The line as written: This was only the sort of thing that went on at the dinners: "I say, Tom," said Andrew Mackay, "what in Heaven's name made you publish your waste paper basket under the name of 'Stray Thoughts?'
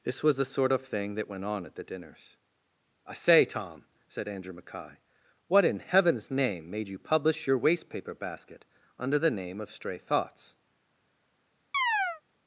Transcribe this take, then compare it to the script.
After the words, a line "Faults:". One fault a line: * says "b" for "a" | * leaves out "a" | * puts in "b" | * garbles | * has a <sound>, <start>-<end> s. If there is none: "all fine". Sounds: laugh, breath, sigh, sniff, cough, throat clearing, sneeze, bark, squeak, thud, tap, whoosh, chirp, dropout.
This was the sort of thing that went on at the dinners: "I say, Tom," said Andrew Mackay, "what in Heaven's name made you publish your waste paper basket under the name of 'Stray Thoughts?'
Faults:
* leaves out "only"
* has a chirp, 11.7-12.2 s